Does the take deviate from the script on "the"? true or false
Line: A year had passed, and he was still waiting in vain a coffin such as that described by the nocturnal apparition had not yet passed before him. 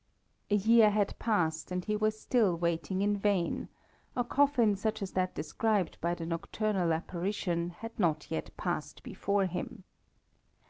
false